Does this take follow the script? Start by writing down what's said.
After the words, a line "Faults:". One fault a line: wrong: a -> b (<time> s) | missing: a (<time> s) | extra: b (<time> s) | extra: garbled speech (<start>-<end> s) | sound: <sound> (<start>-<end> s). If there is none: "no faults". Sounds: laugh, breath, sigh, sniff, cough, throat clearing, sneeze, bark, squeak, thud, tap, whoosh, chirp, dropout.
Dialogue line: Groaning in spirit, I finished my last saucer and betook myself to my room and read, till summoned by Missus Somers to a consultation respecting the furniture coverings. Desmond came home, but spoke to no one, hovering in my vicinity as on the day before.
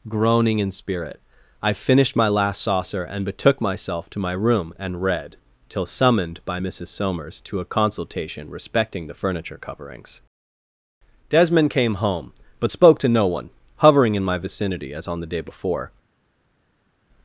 Groaning in spirit, I finished my last saucer and betook myself to my room and read, till summoned by Missus Somers to a consultation respecting the furniture coverings. Desmond came home, but spoke to no one, hovering in my vicinity as on the day before.
Faults:
no faults